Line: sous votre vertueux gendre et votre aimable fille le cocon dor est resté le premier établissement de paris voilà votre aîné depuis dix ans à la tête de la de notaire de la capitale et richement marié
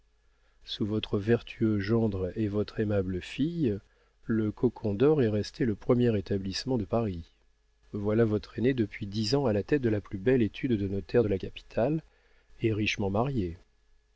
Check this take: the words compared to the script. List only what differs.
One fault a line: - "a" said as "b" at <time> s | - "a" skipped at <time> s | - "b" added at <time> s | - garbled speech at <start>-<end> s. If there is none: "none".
- "plus belle étude" added at 10.0 s